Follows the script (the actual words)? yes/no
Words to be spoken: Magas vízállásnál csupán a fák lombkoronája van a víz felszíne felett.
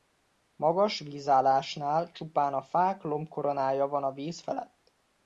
no